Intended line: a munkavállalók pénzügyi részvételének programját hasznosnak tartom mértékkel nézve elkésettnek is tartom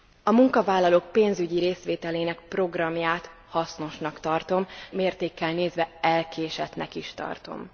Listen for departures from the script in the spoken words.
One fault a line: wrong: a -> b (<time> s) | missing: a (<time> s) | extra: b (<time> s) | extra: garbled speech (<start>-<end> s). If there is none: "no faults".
no faults